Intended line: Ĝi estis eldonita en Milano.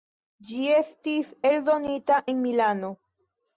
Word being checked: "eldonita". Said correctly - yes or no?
yes